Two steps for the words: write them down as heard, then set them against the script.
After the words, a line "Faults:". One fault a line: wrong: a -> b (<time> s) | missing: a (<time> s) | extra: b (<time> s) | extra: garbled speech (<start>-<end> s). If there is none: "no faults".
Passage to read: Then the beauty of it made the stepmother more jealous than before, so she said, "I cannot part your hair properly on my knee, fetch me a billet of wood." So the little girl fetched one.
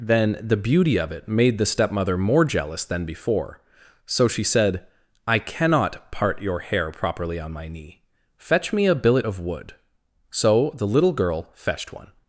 Then the beauty of it made the stepmother more jealous than before, so she said, "I cannot part your hair properly on my knee, fetch me a billet of wood." So the little girl fetched one.
Faults:
no faults